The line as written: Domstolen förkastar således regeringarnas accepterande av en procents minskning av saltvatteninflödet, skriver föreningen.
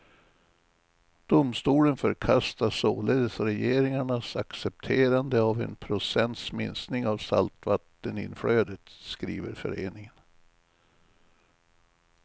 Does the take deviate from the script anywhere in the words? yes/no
no